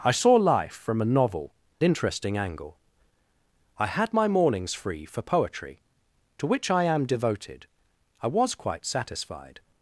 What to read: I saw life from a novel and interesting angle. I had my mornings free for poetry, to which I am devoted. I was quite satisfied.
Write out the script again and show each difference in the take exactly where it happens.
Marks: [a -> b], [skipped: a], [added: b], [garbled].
I saw life from a novel [skipped: and] interesting angle. I had my mornings free for poetry, to which I am devoted. I was quite satisfied.